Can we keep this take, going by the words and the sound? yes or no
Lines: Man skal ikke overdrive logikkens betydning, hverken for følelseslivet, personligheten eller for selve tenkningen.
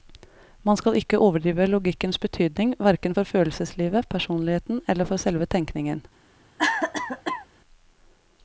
no